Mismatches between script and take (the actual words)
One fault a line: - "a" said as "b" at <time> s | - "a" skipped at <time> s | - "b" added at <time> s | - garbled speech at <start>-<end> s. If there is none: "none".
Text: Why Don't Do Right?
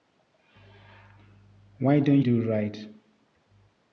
none